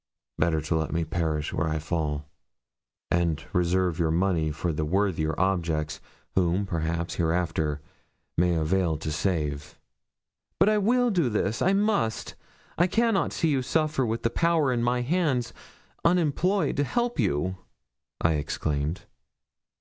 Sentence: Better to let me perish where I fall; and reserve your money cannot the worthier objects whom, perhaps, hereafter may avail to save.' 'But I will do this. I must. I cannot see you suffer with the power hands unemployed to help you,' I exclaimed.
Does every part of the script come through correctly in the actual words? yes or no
no